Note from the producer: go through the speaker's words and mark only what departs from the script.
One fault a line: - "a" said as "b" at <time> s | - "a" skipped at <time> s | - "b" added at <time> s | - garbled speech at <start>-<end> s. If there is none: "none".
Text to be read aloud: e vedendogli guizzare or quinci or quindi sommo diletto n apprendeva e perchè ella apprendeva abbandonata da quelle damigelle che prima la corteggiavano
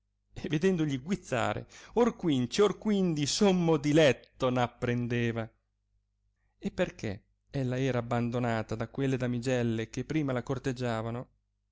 - "apprendeva" said as "era" at 7.8 s